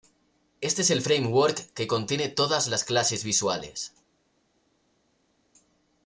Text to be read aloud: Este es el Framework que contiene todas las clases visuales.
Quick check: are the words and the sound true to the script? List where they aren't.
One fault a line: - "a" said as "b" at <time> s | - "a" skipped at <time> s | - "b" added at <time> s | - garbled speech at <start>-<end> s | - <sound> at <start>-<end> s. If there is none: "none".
none